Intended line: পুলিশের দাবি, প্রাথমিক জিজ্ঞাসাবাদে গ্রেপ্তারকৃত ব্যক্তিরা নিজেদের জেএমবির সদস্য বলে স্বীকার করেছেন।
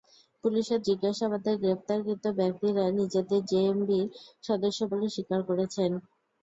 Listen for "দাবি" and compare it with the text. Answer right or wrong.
wrong